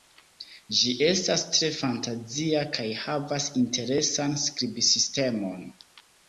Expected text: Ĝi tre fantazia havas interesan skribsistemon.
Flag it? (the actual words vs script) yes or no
yes